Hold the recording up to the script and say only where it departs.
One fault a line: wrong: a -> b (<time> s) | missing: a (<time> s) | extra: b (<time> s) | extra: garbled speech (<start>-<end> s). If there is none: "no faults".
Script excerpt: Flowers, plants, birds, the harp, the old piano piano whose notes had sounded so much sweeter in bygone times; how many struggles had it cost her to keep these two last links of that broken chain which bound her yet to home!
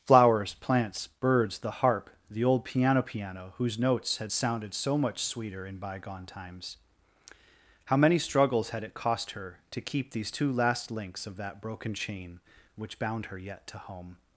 no faults